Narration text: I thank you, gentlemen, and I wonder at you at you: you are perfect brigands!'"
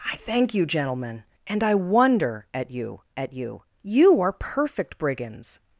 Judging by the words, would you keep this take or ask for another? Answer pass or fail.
pass